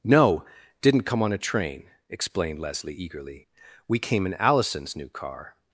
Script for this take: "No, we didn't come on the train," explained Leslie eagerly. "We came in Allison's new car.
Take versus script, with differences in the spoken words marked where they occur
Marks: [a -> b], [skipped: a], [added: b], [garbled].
"No, [skipped: we] didn't come on [the -> a] train," explained Leslie eagerly. "We came in Allison's new car.